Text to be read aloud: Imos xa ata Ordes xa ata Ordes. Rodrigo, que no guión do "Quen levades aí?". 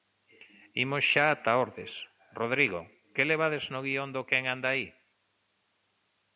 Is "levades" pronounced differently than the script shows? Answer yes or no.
yes